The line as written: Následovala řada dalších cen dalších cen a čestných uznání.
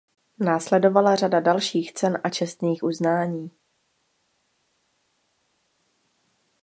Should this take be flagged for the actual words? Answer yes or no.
yes